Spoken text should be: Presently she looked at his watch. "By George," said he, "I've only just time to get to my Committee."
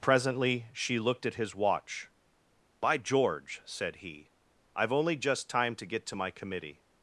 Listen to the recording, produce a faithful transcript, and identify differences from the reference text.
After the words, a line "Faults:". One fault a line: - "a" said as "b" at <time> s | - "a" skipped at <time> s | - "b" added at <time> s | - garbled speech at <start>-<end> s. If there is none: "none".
Presently she looked at his watch. "By George," said he, "I've only just time to get to my Committee."
Faults:
none